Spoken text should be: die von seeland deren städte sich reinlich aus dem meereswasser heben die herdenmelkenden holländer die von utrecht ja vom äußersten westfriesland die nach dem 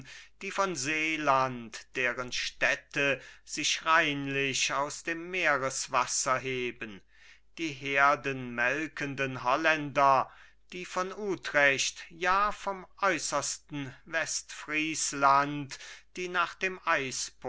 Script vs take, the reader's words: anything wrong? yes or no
no